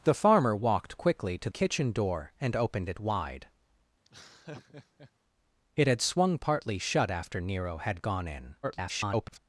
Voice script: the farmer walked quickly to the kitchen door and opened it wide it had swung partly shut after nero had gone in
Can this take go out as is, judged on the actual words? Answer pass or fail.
fail